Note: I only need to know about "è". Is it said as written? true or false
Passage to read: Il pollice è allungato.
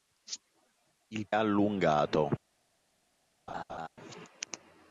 false